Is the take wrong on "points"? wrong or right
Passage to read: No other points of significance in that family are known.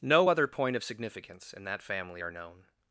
wrong